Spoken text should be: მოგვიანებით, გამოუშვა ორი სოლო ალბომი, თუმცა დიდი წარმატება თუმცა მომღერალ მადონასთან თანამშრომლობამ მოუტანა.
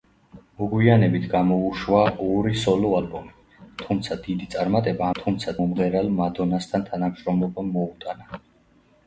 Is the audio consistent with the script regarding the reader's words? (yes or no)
yes